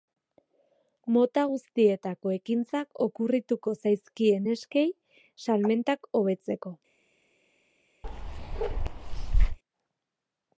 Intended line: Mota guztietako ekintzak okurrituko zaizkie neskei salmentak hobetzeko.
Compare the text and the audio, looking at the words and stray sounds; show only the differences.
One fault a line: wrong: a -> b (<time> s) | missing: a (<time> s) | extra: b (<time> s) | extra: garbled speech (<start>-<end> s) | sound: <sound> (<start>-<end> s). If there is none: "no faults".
sound: bark (8.0-9.6 s)